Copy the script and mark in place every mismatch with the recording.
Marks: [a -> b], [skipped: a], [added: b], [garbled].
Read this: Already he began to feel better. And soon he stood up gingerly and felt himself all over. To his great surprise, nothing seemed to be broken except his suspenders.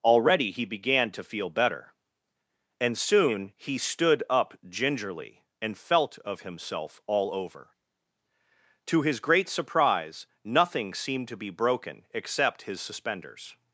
Already he began to feel better. And soon he stood up gingerly and felt [added: of] himself all over. To his great surprise, nothing seemed to be broken except his suspenders.